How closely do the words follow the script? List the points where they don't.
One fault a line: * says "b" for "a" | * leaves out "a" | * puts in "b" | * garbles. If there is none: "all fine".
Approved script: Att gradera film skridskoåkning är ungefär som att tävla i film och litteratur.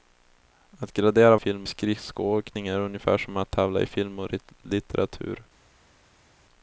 all fine